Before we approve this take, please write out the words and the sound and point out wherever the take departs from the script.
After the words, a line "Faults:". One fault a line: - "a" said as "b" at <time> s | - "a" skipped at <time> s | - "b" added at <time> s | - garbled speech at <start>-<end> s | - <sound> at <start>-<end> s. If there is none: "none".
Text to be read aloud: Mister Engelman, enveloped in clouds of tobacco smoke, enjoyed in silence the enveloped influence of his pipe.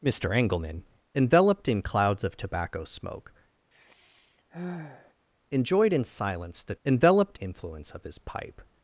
Mister Engelman, enveloped in clouds of tobacco smoke, enjoyed in silence the enveloped influence of his pipe.
Faults:
- sigh at 3.7-5.1 s